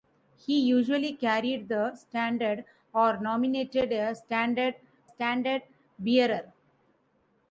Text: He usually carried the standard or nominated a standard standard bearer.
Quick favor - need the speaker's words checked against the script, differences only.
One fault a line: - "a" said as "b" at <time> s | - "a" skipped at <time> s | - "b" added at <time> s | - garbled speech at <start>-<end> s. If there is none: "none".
none